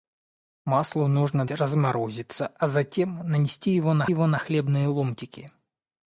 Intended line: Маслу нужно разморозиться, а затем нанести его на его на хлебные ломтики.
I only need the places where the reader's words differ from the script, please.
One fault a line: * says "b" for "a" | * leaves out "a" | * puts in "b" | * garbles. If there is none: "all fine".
all fine